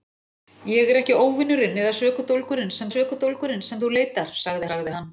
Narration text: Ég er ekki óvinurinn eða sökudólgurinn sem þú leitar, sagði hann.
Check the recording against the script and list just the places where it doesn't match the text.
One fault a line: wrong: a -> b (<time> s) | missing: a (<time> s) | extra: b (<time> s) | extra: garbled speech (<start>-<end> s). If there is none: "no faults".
extra: sökudólgurinn sem (2.9 s)
extra: sagði (4.7 s)